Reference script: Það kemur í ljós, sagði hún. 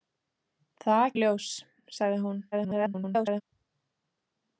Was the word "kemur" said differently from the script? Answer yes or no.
yes